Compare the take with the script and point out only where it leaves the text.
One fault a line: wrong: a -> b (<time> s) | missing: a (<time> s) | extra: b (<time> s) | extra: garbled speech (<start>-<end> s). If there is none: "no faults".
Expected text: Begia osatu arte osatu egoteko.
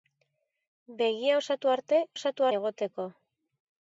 no faults